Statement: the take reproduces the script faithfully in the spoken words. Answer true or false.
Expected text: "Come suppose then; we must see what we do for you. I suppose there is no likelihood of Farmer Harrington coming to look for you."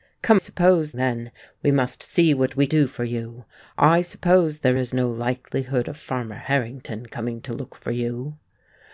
true